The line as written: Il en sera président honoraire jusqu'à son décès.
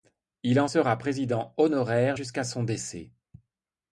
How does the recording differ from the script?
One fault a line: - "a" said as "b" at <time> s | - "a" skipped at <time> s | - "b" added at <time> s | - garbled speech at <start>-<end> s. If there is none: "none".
none